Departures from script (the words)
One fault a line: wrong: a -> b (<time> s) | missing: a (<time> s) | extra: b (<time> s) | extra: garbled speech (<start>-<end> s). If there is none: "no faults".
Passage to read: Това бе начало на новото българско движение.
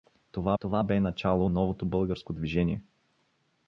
extra: това (0.6 s)
missing: на (1.5 s)